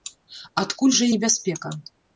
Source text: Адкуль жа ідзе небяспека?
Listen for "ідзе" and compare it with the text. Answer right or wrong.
wrong